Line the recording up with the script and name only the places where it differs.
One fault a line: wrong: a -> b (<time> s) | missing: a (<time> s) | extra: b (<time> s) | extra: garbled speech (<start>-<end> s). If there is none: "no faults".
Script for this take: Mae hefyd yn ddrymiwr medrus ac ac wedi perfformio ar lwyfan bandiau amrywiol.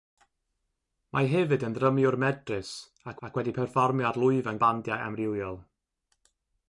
no faults